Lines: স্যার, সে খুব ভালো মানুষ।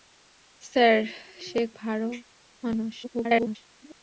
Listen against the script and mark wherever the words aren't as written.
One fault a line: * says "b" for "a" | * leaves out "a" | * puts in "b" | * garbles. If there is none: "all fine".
* leaves out "খুব"
* garbles